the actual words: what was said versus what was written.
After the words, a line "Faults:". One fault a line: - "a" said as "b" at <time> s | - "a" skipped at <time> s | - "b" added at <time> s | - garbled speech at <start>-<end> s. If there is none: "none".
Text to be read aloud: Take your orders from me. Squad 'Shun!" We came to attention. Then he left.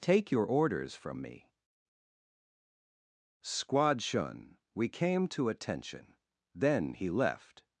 Take your orders from me. Squad 'Shun!" We came to attention. Then he left.
Faults:
none